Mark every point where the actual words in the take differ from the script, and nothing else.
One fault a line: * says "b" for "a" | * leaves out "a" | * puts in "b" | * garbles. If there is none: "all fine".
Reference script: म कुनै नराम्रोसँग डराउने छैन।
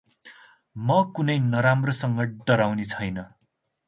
all fine